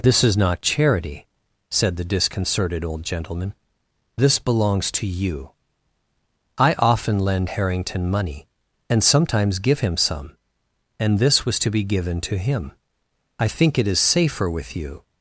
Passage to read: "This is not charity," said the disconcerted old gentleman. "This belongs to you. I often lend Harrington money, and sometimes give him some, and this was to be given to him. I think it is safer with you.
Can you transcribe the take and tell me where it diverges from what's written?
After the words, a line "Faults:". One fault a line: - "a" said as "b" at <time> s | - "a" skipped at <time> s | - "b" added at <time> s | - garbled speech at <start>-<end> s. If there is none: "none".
"This is not charity," said the disconcerted old gentleman. "This belongs to you. I often lend Harrington money, and sometimes give him some, and this was to be given to him. I think it is safer with you.
Faults:
none